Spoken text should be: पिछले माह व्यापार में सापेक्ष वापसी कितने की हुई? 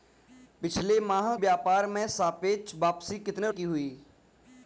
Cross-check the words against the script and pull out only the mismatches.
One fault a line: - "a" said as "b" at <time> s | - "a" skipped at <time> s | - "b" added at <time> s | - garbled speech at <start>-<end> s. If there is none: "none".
none